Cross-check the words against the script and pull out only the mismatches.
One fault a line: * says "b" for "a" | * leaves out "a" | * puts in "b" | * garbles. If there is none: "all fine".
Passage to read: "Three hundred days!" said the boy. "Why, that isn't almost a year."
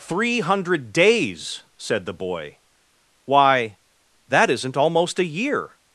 all fine